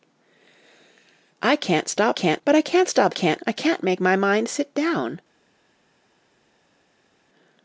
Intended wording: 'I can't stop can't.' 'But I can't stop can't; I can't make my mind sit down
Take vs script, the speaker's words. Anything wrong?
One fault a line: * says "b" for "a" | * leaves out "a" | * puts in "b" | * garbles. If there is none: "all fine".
all fine